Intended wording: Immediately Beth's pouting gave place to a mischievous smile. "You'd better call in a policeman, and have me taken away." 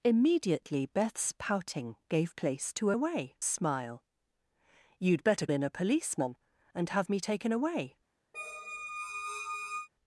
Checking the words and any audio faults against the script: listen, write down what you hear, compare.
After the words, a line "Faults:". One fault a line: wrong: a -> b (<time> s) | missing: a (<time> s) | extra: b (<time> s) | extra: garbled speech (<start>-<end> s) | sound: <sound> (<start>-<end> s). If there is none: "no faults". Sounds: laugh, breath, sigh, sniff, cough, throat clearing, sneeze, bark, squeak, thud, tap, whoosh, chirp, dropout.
Immediately Beth's pouting gave place to a away smile. "You'd better in a policeman, and have me taken away."
Faults:
wrong: mischievous -> away (2.9 s)
missing: call (5.5 s)
sound: squeak (8.3-9.9 s)